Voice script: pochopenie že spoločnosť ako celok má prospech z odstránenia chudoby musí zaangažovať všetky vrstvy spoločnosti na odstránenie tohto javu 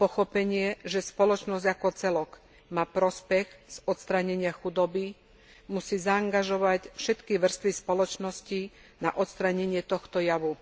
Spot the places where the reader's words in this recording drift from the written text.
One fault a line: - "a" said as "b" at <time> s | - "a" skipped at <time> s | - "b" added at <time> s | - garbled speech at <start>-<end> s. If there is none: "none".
none